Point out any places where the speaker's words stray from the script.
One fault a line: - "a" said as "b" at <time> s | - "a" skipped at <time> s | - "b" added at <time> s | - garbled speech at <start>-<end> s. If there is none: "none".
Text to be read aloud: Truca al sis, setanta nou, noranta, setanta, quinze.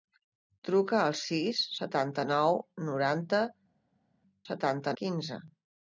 none